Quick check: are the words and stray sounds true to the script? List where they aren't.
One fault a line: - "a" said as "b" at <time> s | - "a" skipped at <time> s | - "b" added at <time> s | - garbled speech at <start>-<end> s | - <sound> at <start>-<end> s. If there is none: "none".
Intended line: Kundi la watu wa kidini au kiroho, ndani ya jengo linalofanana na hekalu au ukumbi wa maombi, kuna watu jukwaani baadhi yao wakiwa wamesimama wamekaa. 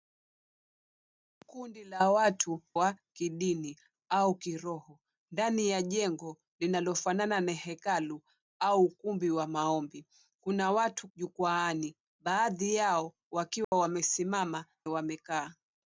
- dropout at 13.6-13.7 s